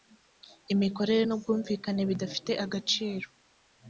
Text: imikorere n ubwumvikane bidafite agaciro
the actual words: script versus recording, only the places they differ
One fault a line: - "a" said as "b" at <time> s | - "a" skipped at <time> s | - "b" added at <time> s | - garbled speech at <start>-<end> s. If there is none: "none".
none